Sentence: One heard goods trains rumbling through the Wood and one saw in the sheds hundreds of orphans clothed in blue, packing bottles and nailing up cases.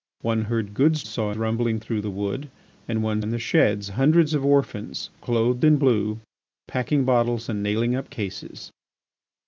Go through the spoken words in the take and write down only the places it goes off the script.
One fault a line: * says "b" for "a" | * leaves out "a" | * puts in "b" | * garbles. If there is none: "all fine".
* says "saw" for "trains"
* leaves out "saw"